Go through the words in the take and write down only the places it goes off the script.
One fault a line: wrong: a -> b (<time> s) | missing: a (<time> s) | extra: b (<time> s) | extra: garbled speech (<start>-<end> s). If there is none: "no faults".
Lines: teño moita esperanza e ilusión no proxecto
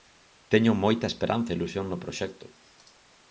no faults